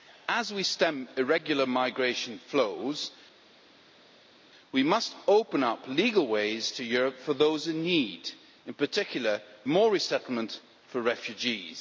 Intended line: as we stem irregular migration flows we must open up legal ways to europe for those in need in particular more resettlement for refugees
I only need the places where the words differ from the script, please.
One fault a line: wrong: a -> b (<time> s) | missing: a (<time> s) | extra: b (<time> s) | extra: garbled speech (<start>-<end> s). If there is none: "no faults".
no faults